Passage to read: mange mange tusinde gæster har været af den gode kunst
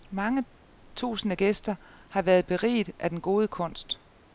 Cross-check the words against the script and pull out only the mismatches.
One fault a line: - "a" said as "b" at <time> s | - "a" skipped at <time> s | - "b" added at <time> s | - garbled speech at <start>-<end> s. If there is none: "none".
- "mange" skipped at 0.4 s
- "beriget" added at 2.4 s